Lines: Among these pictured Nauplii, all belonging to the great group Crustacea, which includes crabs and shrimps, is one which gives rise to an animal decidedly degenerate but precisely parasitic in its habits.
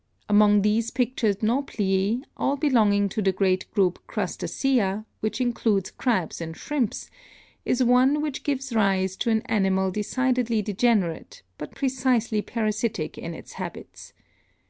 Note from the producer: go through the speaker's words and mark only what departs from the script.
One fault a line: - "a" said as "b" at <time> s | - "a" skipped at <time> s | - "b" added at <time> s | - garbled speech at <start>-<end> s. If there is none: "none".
none